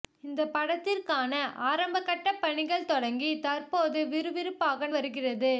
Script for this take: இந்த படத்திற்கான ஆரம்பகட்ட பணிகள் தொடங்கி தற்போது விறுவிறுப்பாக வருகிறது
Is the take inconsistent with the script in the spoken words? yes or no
no